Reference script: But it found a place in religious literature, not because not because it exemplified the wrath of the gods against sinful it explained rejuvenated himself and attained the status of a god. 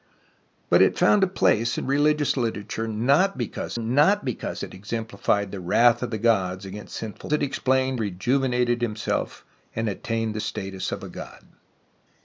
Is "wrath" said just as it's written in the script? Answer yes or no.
yes